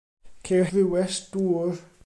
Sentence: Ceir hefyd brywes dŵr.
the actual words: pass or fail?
fail